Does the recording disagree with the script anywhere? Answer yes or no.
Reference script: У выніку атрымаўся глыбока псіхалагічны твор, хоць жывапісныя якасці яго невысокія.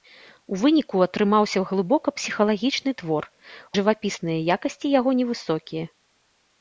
yes